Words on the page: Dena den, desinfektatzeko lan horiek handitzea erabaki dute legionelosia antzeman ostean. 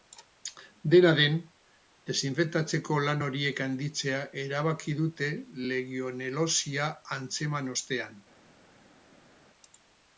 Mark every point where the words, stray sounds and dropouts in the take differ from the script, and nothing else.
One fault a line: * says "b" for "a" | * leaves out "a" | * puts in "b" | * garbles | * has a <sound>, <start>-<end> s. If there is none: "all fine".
all fine